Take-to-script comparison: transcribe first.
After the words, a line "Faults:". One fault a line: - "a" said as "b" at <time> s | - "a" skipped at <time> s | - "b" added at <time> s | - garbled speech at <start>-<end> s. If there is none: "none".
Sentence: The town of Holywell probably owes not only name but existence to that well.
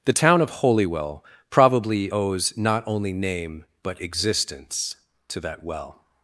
The town of Holywell probably owes not only name but existence to that well.
Faults:
none